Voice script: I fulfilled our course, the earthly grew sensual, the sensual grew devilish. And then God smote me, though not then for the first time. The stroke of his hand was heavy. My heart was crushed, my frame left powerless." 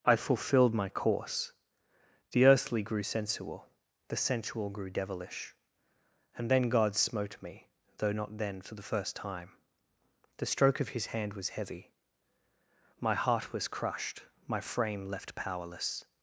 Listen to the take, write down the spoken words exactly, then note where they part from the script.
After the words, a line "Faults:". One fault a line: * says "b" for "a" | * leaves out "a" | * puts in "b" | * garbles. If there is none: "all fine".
I fulfilled my course, the earthly grew sensual, the sensual grew devilish. And then God smote me, though not then for the first time. The stroke of his hand was heavy. My heart was crushed, my frame left powerless."
Faults:
* says "my" for "our"